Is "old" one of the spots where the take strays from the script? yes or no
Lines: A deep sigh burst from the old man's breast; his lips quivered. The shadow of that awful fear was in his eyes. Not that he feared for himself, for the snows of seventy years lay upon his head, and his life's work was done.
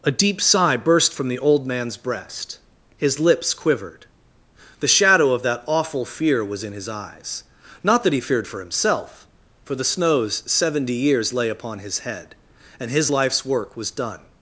no